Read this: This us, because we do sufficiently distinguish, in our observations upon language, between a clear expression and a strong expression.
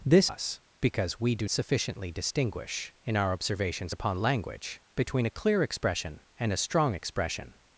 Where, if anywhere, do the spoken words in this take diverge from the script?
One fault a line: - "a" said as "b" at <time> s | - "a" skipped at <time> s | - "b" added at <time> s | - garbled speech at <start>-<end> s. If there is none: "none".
none